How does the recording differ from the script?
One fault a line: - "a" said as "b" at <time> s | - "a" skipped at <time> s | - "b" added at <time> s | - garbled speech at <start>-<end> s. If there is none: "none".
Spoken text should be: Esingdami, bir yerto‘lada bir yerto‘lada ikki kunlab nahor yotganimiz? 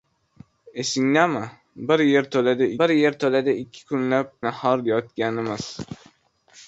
none